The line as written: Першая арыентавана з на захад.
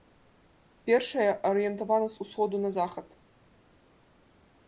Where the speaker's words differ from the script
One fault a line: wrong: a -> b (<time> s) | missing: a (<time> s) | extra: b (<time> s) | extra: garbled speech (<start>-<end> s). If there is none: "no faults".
extra: усходу (2.2 s)